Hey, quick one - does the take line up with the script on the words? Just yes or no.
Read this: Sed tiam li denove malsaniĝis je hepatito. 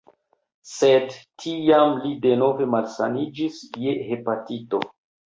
yes